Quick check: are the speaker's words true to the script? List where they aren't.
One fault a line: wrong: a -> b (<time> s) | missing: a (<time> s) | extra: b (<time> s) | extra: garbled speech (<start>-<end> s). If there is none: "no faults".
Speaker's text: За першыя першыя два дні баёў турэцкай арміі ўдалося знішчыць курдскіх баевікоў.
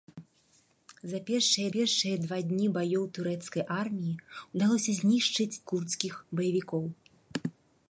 no faults